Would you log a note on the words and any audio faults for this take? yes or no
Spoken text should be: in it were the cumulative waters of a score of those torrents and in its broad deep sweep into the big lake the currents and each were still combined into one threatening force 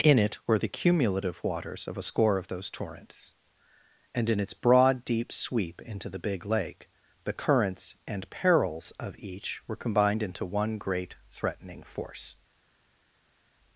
yes